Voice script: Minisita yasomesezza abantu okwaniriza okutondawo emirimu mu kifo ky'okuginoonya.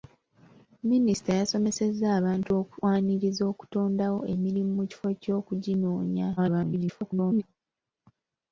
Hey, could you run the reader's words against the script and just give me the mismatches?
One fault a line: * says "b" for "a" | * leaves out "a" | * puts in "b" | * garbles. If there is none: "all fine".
* garbles